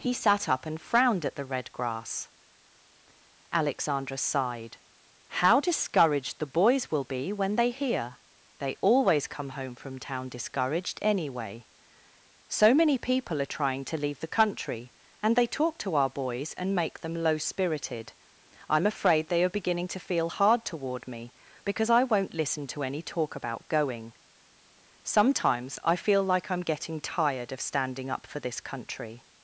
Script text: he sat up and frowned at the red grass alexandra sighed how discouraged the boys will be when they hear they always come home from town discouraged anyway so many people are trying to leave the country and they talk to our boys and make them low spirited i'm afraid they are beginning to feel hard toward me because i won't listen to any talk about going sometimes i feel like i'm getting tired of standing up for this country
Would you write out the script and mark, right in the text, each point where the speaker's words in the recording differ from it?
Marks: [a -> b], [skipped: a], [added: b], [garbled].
he sat up and frowned at the red grass alexandra sighed how discouraged the boys will be when they hear they always come home from town discouraged anyway so many people are trying to leave the country and they talk to our boys and make them low spirited i'm afraid they are beginning to feel hard toward me because i won't listen to any talk about going sometimes i feel like i'm getting tired of standing up for this country